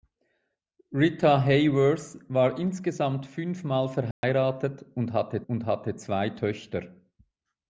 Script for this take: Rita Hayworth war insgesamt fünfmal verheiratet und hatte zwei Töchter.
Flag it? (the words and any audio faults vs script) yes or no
yes